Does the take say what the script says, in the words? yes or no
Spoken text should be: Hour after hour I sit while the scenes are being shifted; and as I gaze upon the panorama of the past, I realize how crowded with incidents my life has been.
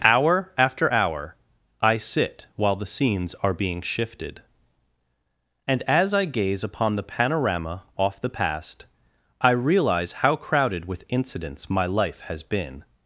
no